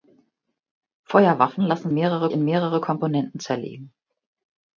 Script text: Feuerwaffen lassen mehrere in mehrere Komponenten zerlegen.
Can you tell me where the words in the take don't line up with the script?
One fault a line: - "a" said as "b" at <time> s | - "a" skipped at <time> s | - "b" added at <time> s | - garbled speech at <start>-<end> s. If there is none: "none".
none